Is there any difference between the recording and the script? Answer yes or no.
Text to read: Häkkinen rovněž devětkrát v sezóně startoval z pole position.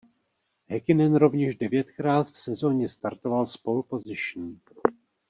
no